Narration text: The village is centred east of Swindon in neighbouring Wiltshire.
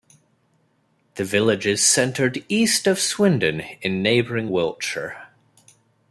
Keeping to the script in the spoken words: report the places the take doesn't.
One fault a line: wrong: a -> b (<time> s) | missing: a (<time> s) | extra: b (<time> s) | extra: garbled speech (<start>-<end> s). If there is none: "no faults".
no faults